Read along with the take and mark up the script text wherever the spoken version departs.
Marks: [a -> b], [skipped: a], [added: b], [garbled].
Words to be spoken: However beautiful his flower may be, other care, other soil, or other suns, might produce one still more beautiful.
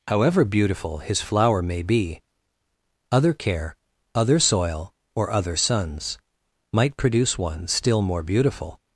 However beautiful his flower may be, other care, other soil, or other suns, might produce one still more beautiful.